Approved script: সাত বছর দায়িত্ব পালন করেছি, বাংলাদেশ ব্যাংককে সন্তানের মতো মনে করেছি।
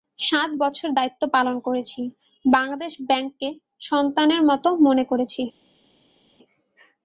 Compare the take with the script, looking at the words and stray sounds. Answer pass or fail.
pass